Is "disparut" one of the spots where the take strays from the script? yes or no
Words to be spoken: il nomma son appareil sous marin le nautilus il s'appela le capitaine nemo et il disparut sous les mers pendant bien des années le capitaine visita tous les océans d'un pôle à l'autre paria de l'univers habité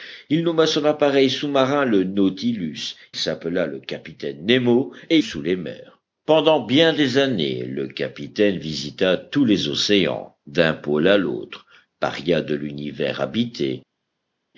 yes